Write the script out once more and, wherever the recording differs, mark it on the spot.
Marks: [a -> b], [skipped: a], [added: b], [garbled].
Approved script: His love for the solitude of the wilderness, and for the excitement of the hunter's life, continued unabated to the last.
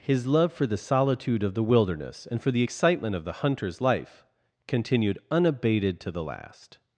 His love for the solitude of the wilderness, and for the excitement of the hunter's life, continued unabated to the last.